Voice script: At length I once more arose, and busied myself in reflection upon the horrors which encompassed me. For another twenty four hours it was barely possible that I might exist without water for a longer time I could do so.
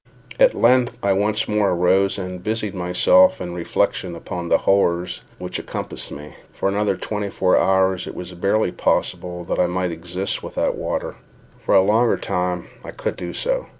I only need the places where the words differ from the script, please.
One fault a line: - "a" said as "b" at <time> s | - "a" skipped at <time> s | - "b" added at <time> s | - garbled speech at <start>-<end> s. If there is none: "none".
none